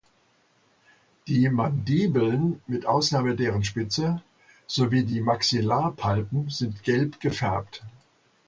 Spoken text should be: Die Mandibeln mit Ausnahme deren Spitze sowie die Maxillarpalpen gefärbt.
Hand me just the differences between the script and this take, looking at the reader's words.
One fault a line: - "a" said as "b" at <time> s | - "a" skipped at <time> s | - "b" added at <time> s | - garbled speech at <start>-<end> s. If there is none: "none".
- "sind gelb" added at 6.5 s